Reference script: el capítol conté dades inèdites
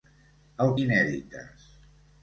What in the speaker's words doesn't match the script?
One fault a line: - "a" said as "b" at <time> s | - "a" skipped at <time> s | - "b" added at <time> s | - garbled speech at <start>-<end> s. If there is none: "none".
- "capítol conté dades" skipped at 0.7 s